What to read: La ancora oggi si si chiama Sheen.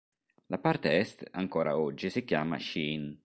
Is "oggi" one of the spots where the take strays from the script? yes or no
no